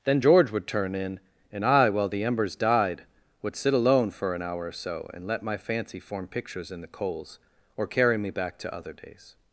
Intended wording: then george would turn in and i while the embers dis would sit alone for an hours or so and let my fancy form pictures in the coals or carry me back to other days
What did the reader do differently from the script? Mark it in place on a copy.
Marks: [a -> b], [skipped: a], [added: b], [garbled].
then george would turn in and i while the embers [dis -> died] would sit alone for an [hours -> hour] or so and let my fancy form pictures in the coals or carry me back to other days